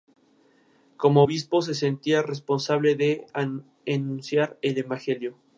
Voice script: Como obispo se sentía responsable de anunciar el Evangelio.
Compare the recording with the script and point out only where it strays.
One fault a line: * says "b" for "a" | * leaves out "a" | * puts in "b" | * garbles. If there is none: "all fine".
all fine